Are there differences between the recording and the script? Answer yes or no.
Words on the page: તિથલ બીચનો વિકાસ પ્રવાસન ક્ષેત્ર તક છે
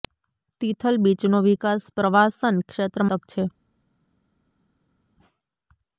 no